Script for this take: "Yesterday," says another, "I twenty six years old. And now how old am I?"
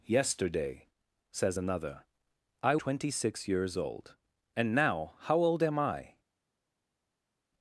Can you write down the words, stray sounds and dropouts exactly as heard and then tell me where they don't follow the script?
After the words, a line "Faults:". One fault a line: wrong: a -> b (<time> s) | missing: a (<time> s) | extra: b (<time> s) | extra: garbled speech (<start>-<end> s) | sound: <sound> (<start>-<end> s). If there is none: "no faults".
"Yesterday," says another, "I twenty six years old. And now how old am I?"
Faults:
no faults